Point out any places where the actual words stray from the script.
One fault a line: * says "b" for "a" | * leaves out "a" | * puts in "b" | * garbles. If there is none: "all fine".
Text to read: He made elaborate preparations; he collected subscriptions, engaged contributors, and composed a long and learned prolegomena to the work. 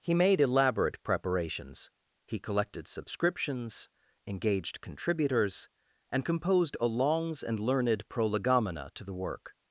* says "longs" for "long"